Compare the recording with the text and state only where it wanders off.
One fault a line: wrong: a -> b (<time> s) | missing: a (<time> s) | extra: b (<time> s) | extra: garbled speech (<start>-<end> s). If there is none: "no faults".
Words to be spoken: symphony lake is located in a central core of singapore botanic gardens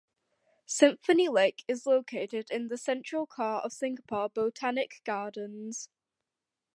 wrong: a -> the (2.7 s)